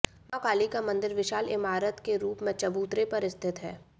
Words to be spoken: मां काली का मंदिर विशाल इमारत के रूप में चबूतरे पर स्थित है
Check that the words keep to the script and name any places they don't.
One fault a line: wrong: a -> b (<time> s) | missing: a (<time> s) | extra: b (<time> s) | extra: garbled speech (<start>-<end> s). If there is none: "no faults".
no faults